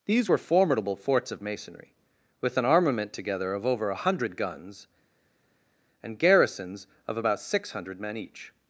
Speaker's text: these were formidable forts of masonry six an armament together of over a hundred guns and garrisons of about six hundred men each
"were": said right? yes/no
yes